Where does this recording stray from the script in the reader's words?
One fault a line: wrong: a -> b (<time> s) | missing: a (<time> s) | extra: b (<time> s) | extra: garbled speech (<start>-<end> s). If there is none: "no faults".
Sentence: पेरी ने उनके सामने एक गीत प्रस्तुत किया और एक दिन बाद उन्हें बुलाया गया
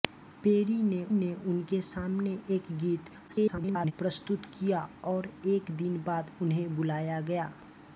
extra: ने (1.1 s)
extra: garbled speech (3.3-3.9 s)